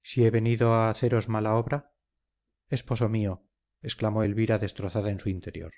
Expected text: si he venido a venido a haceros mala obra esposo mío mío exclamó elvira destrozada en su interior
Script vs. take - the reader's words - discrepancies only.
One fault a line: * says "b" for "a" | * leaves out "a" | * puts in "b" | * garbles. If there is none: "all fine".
* leaves out "venido a"
* leaves out "mío"